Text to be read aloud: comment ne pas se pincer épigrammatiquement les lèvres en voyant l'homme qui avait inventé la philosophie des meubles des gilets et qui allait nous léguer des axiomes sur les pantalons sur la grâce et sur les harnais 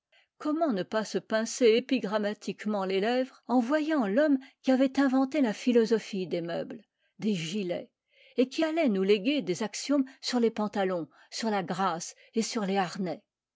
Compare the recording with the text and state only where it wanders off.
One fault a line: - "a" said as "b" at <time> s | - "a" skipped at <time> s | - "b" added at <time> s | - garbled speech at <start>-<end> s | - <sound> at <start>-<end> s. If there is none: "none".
none